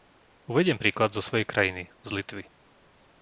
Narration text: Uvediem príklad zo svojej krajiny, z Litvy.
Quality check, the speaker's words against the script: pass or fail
pass